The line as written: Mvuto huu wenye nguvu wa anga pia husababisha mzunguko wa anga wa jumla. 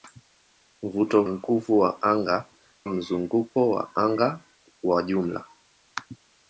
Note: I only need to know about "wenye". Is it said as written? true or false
false